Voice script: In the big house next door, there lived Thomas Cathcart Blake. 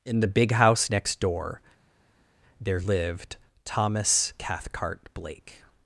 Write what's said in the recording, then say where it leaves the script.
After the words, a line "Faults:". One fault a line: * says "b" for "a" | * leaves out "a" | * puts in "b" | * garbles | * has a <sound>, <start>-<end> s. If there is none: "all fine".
In the big house next door, there lived Thomas Cathcart Blake.
Faults:
all fine